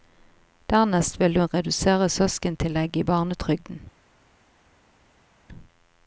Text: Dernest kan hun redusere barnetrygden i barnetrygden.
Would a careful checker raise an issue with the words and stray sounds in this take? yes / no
yes